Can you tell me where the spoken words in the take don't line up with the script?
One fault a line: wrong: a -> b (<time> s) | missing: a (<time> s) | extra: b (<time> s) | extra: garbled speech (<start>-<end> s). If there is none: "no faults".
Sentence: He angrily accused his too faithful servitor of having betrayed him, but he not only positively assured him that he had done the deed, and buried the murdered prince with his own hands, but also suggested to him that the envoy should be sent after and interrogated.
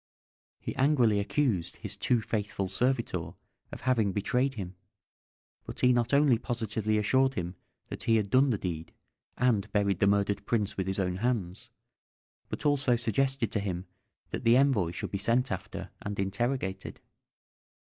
no faults